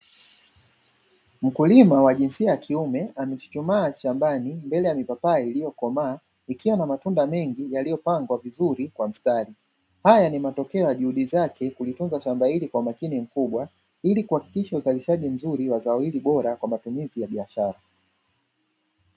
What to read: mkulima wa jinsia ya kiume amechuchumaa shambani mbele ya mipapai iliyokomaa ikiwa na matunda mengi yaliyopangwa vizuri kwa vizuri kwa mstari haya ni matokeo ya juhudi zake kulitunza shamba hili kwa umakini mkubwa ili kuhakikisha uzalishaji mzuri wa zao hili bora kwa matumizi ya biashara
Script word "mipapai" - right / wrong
right